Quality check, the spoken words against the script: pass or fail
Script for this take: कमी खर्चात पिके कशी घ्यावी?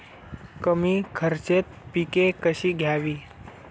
pass